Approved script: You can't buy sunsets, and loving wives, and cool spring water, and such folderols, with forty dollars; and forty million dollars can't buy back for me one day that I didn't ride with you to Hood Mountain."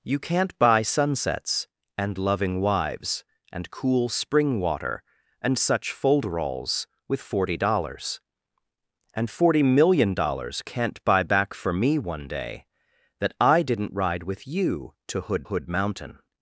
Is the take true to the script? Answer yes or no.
no